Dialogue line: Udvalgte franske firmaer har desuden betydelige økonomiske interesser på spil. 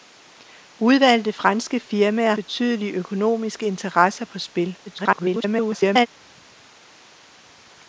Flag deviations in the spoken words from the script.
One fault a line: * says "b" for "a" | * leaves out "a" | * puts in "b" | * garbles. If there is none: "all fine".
* leaves out "har desuden"
* garbles